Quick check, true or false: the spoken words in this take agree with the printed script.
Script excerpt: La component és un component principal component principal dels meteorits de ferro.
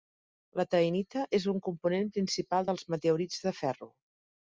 false